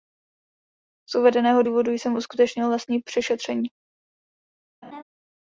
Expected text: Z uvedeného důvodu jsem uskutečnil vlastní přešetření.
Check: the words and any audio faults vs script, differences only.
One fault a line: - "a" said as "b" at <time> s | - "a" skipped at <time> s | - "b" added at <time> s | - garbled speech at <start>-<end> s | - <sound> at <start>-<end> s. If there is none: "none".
- laugh at 4.8-5.0 s